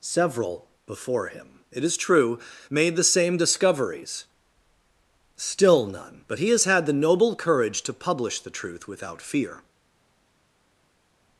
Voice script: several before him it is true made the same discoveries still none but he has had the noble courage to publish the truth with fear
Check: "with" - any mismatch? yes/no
yes